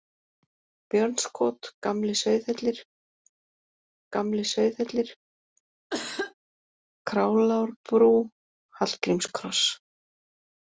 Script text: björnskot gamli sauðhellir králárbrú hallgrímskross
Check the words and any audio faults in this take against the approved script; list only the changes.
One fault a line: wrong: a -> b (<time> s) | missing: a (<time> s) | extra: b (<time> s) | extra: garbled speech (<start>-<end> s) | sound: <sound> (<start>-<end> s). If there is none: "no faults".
extra: gamli sauðhellir (4.2 s)
sound: cough (5.9-6.3 s)